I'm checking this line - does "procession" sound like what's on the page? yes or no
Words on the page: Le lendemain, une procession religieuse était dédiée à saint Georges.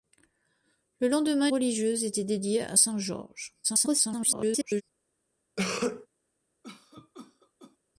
no